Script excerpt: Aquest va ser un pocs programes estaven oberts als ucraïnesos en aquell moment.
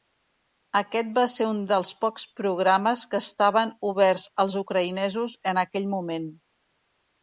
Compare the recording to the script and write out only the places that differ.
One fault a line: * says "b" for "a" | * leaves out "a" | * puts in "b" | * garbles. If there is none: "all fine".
* puts in "dels"
* puts in "que"